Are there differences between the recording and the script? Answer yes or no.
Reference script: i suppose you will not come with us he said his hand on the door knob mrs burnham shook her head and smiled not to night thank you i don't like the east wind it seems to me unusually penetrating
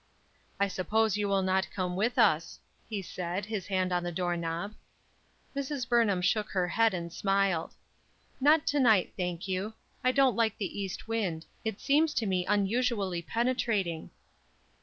no